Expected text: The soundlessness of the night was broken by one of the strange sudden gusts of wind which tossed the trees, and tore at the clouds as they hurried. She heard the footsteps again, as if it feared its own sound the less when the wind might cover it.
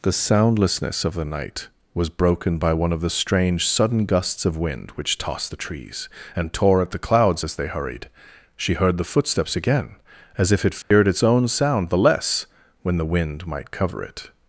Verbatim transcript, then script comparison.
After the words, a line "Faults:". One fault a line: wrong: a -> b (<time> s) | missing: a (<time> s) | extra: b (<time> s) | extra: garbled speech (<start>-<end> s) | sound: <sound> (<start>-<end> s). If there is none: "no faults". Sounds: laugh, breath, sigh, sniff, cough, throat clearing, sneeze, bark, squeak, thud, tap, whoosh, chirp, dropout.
The soundlessness of the night was broken by one of the strange sudden gusts of wind which tossed the trees, and tore at the clouds as they hurried. She heard the footsteps again, as if it feared its own sound the less when the wind might cover it.
Faults:
sound: dropout (10.8-10.9 s)